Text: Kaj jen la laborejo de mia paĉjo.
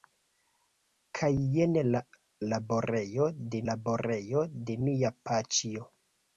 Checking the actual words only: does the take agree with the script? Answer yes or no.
no